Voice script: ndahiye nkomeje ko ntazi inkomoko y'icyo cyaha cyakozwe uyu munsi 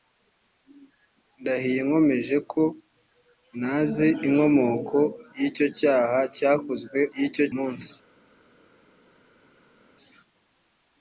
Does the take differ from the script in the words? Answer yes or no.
yes